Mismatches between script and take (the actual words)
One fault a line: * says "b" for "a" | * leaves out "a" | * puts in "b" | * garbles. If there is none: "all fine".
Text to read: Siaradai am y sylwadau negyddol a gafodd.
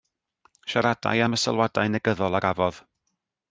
all fine